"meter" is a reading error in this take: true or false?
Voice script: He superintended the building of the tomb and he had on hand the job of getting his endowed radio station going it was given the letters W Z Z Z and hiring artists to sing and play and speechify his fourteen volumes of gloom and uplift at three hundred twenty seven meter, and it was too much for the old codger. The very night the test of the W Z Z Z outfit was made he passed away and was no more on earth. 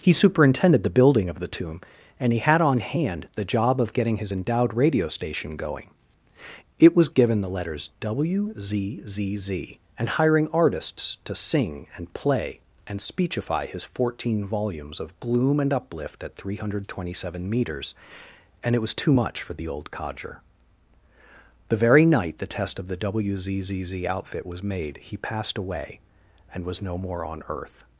true